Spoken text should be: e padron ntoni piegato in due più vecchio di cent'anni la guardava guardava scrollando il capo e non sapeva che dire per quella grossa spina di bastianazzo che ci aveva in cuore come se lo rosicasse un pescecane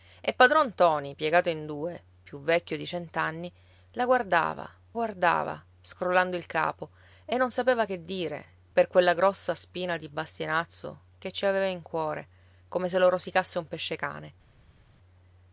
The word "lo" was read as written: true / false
true